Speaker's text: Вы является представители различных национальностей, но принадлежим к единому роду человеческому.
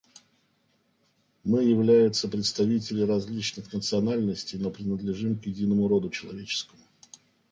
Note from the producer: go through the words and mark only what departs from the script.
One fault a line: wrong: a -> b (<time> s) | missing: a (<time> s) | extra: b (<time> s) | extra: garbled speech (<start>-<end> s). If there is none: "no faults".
wrong: Вы -> Мы (1.4 s)